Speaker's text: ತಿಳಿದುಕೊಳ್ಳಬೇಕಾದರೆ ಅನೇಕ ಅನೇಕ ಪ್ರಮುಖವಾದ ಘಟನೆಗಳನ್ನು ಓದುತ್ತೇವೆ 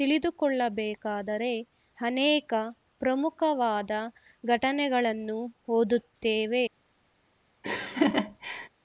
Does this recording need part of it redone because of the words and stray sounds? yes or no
yes